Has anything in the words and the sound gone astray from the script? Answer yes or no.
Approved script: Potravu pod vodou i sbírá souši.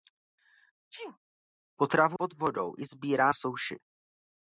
yes